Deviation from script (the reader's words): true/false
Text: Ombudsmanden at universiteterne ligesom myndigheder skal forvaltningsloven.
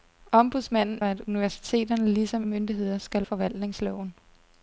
false